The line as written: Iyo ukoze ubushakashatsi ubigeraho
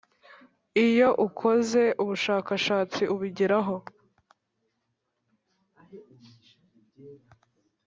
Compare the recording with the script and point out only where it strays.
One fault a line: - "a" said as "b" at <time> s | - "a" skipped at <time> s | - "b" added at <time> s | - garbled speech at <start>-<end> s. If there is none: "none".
none